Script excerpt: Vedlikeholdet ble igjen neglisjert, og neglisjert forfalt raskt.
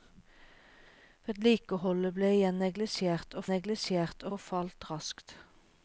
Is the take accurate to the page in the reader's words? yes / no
yes